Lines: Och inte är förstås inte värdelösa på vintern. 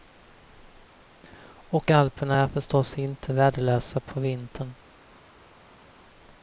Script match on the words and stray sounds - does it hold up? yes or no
no